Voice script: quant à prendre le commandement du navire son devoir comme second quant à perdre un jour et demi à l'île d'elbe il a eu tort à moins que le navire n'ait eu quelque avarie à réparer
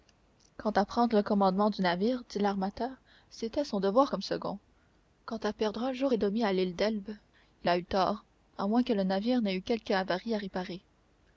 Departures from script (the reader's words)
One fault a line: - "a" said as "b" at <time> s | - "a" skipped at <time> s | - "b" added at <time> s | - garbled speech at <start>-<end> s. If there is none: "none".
- "dit l'armateur c'était" added at 2.3 s